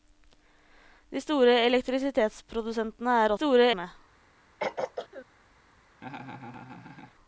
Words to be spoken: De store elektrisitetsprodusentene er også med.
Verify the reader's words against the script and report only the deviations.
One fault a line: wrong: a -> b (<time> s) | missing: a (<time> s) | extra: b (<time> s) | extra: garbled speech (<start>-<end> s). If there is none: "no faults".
wrong: også -> store (3.3 s)